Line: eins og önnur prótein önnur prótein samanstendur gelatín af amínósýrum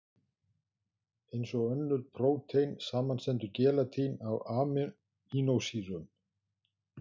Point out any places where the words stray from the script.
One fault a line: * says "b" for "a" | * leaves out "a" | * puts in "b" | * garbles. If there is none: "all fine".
* leaves out "önnur prótein"